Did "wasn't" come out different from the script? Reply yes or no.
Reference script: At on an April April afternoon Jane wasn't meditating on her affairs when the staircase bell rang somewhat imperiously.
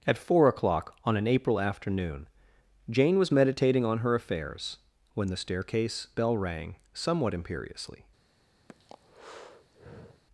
yes